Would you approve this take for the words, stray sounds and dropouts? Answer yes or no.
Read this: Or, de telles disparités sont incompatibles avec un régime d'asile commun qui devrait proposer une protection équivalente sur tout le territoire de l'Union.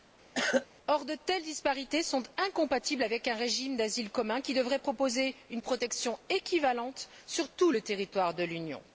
no